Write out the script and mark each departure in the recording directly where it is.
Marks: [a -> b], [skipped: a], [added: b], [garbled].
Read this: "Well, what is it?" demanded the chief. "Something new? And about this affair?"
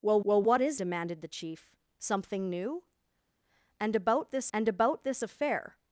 "Well, [added: well] what is [skipped: it?"] demanded the chief. "Something new? And about this [added: and about this] affair?"